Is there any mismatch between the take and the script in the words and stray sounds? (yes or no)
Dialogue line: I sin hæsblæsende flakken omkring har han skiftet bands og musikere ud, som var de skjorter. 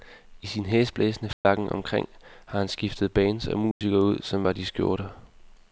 yes